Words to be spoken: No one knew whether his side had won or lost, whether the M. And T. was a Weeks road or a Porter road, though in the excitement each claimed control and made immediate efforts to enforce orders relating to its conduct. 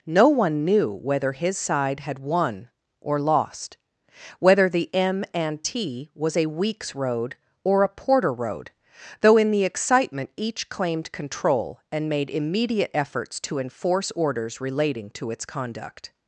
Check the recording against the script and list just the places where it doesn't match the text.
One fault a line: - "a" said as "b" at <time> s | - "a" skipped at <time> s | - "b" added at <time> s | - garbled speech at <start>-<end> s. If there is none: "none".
none